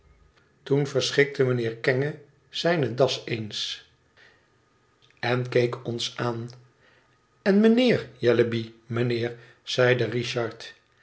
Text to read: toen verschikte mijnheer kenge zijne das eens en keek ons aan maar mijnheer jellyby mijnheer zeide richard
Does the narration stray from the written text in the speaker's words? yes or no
yes